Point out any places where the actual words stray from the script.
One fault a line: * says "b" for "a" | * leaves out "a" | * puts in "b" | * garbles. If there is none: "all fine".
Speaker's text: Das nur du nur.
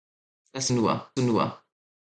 all fine